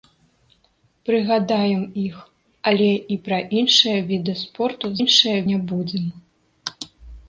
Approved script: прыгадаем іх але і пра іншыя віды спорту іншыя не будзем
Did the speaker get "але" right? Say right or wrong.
right